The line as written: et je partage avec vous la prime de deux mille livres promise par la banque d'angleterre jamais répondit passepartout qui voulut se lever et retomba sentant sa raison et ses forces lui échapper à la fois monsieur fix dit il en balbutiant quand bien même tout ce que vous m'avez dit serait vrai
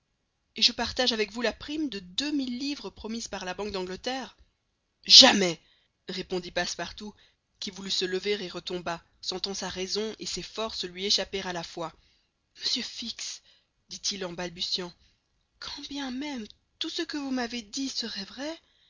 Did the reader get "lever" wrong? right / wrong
right